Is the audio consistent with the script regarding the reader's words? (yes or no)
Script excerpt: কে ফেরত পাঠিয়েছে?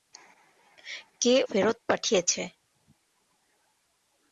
yes